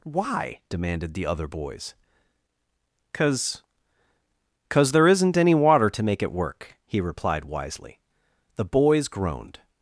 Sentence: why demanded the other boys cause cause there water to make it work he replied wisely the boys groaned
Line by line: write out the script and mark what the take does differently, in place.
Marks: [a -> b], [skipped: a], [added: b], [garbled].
why demanded the other boys cause cause there [added: isn't any] water to make it work he replied wisely the boys groaned